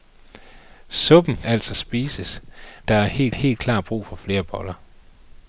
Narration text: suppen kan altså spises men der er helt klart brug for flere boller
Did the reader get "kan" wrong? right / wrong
wrong